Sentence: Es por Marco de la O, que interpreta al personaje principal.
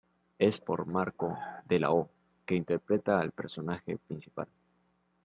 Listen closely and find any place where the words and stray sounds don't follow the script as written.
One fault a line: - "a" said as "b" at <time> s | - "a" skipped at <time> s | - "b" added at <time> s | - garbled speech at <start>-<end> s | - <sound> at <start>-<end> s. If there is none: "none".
none